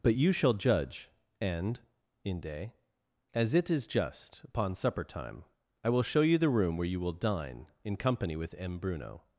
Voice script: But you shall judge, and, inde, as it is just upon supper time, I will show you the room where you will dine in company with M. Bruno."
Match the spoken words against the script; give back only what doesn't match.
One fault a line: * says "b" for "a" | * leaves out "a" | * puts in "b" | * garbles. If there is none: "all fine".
all fine